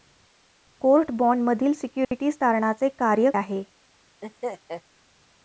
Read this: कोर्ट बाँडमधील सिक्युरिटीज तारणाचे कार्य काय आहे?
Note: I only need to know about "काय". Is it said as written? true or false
false